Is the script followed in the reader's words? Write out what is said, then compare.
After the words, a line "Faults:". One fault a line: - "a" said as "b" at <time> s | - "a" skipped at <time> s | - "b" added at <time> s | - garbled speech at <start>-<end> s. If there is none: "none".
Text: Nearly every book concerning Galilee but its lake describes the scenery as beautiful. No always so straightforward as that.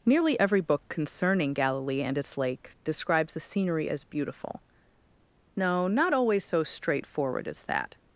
Nearly every book concerning Galilee and its lake describes the scenery as beautiful. No not always so straightforward as that.
Faults:
- "but" said as "and" at 2.0 s
- "not" added at 5.9 s